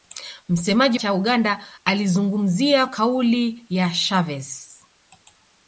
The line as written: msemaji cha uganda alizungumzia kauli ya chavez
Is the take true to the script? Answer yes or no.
yes